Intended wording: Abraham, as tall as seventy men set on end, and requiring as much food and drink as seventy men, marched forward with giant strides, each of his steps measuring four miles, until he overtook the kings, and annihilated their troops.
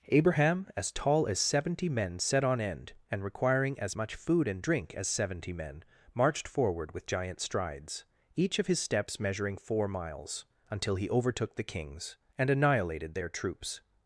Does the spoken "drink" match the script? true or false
true